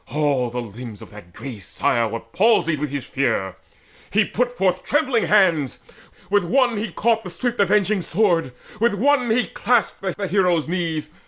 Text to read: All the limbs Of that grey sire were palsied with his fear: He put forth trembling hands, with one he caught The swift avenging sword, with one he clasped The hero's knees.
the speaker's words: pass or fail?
fail